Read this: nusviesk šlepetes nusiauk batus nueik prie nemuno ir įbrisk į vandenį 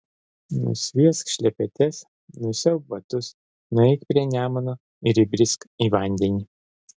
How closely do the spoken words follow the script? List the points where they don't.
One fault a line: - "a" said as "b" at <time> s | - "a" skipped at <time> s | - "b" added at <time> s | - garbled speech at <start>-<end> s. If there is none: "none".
none